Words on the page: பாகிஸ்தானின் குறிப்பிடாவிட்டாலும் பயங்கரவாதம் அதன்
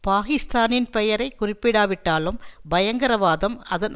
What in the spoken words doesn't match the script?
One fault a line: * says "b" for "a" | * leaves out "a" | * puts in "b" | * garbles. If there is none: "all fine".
* puts in "பெயரை"